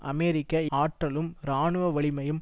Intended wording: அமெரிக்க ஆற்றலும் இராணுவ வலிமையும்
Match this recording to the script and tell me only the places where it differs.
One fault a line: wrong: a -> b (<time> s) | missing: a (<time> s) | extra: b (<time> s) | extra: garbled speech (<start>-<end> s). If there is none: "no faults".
no faults